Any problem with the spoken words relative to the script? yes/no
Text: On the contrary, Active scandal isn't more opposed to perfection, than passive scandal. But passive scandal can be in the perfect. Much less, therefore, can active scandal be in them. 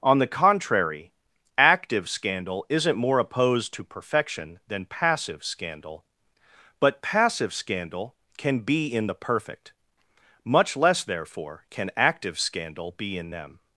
no